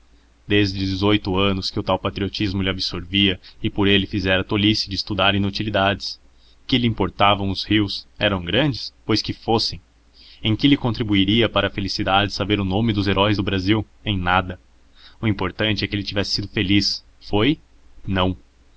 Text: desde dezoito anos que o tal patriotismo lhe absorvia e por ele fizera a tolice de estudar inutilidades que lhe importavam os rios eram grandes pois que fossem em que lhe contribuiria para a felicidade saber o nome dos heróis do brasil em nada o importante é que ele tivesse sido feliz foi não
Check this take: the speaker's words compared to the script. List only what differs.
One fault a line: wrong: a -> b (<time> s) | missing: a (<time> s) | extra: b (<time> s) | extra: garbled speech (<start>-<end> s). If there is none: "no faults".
no faults